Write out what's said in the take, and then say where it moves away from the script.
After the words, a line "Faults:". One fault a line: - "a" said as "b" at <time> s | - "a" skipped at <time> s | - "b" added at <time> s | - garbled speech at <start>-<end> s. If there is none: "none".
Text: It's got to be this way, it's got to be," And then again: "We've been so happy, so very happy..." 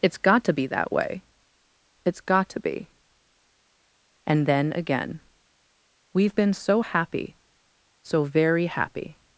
It's got to be that way, it's got to be," And then again: "We've been so happy, so very happy..."
Faults:
- "this" said as "that" at 0.7 s